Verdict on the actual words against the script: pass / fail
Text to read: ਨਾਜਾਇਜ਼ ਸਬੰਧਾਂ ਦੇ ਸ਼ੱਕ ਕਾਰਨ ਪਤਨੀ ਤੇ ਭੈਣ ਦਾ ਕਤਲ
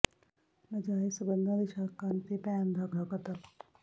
fail